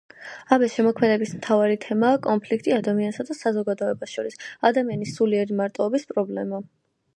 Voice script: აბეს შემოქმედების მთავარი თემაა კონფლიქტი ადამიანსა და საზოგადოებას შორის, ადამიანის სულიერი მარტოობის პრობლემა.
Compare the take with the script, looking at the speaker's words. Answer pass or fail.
pass